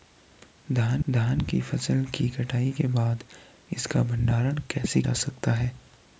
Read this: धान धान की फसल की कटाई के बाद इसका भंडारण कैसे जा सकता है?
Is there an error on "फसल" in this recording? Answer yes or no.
no